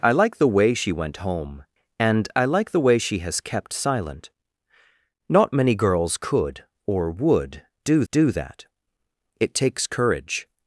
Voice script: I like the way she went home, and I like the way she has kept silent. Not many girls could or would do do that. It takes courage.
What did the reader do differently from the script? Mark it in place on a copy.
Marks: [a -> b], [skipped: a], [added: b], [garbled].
I like the way she went home, and I like the way she has kept silent. Not many girls could or would do do that. It takes courage.